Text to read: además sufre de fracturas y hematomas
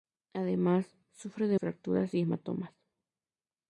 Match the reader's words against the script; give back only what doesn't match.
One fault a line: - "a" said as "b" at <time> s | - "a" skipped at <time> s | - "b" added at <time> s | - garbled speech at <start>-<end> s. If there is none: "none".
none